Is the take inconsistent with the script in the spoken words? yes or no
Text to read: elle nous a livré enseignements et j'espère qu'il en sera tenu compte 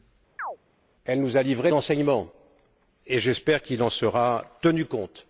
no